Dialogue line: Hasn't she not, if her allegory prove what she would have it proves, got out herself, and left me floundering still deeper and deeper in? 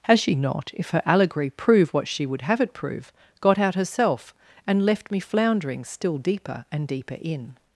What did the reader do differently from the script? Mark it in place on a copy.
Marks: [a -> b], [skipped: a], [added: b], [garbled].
[Hasn't -> Has] she not, if her allegory prove what she would have it [proves, -> prove] got out herself, and left me floundering still deeper and deeper in?